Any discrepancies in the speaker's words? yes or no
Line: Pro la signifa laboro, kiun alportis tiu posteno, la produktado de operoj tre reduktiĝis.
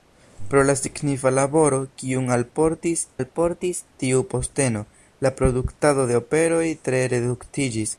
yes